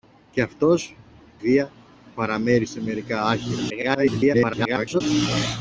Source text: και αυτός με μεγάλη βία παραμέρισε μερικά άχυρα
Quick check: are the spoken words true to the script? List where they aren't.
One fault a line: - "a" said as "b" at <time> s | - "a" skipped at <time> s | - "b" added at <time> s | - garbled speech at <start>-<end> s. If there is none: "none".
- "με μεγάλη" skipped at 0.9 s
- garbled speech at 3.7-5.0 s